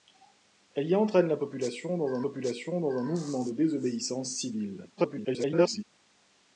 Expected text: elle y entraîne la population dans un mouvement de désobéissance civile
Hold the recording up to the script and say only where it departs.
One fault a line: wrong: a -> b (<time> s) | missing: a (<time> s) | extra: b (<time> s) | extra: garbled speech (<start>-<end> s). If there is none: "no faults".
extra: population dans un (2.2 s)
extra: garbled speech (5.0-5.8 s)